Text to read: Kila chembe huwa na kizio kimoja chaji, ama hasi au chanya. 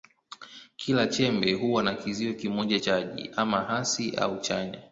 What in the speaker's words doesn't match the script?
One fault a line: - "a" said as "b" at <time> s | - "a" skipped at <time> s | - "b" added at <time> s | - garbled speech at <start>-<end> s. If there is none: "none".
none